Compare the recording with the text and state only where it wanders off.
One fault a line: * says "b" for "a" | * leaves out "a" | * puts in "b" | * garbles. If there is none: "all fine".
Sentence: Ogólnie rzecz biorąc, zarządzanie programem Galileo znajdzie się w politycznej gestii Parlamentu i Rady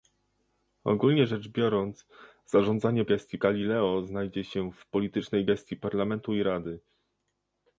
* says "gestii" for "programem"